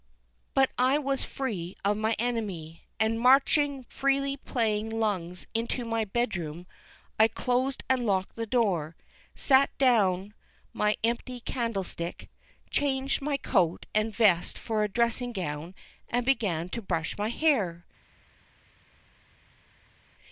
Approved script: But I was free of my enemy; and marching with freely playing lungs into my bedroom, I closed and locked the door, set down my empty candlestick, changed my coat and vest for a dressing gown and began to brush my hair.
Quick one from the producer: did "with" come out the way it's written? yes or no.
no